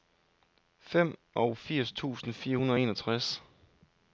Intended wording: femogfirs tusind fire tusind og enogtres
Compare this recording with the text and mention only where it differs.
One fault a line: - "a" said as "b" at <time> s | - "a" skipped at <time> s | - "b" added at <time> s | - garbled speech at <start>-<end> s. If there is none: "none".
- "tusind" said as "hundrede" at 2.5 s